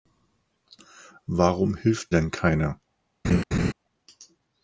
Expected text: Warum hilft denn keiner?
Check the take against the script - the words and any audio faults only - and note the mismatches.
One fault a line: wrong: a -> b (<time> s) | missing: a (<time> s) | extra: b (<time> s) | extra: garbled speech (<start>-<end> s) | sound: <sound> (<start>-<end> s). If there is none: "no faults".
sound: laugh (3.2-3.7 s)